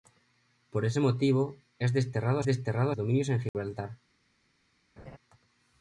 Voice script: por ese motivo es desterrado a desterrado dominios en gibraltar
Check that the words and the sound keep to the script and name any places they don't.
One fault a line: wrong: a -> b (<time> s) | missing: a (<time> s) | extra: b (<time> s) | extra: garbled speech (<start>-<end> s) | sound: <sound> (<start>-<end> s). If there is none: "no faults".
sound: dropout (3.5-3.5 s)
sound: laugh (5.0-5.2 s)